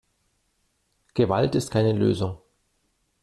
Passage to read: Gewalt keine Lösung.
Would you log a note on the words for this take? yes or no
yes